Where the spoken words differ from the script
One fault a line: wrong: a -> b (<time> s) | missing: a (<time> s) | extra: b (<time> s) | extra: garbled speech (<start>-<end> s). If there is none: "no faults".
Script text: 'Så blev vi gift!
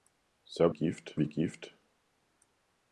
wrong: blev -> gift (0.7 s)